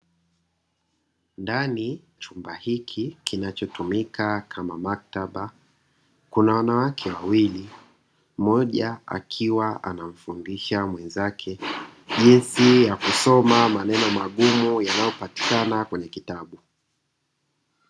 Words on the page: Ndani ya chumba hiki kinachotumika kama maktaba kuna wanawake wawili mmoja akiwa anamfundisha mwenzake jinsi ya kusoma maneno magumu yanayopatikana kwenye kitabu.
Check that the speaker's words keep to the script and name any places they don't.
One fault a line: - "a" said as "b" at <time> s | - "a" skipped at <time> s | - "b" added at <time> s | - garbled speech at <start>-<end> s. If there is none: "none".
- "ya" skipped at 2.0 s